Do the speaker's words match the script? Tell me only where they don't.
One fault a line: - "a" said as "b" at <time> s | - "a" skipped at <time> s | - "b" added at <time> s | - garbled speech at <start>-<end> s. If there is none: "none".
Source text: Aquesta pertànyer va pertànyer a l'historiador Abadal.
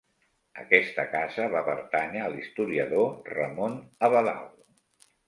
- "pertànyer" said as "casa" at 1.1 s
- "Ramon" added at 3.4 s